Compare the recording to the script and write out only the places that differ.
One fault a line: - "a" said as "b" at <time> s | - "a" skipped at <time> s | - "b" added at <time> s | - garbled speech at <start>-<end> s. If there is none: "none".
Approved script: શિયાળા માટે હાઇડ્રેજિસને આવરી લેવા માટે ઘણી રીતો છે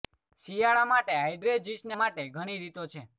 - "આવરી લેવા" skipped at 2.0 s